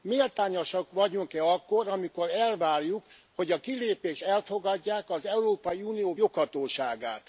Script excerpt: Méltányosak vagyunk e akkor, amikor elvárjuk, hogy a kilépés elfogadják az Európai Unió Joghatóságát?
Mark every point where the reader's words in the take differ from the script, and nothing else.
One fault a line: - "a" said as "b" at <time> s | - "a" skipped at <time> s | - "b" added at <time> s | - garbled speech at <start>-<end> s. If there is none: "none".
none